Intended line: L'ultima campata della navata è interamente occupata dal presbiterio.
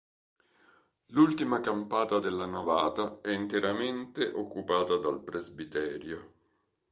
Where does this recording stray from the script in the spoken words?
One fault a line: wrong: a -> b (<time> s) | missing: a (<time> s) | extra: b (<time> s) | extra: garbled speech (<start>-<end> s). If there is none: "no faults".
no faults